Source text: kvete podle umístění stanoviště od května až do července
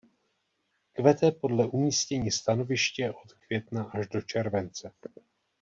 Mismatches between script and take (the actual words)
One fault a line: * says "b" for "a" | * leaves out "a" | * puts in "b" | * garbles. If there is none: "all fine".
all fine